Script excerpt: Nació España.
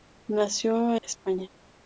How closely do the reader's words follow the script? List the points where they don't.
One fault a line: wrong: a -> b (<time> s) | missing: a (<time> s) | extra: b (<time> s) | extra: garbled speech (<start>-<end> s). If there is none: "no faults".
no faults